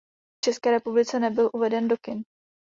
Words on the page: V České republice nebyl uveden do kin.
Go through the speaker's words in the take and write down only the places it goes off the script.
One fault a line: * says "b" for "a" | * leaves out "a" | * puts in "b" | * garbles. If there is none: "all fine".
all fine